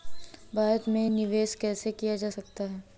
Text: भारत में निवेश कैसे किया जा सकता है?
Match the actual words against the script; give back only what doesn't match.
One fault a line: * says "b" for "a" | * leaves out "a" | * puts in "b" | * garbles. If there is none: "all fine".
all fine